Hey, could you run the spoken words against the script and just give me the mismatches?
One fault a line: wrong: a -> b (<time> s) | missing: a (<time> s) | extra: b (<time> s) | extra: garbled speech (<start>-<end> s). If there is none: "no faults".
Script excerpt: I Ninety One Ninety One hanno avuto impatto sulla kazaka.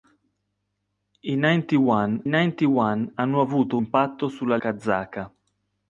no faults